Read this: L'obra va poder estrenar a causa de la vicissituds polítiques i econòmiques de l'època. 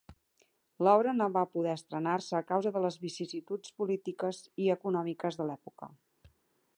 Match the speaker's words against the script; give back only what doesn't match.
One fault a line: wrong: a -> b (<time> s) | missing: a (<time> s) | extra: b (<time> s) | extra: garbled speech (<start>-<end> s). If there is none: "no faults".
extra: no (1.2 s)
extra: se (2.3 s)
wrong: la -> les (2.9 s)